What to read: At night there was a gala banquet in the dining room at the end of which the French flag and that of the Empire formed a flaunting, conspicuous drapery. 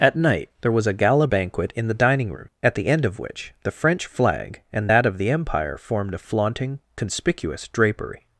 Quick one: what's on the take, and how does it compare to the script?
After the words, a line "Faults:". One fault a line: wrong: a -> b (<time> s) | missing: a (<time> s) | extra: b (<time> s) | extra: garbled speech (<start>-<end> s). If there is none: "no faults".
At night there was a gala banquet in the dining room at the end of which the French flag and that of the Empire formed a flaunting, conspicuous drapery.
Faults:
no faults